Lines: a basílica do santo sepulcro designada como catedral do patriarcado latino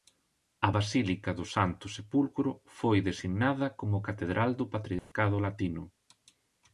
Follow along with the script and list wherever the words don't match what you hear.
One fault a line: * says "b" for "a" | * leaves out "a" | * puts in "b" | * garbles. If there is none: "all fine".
* puts in "foi"